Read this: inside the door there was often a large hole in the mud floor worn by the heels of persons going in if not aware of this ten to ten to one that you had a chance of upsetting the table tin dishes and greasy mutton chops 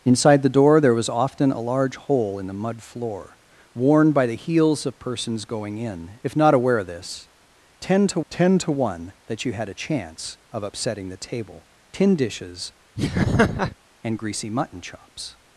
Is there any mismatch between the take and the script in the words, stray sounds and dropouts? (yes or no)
yes